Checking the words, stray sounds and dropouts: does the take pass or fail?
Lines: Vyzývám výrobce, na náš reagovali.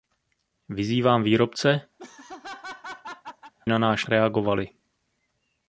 fail